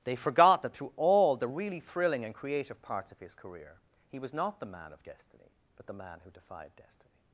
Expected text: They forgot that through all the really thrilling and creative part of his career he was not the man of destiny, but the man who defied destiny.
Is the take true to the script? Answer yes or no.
no